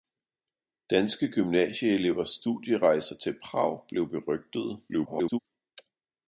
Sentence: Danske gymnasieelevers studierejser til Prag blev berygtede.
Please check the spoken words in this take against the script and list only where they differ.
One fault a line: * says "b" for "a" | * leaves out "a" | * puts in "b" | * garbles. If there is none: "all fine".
* garbles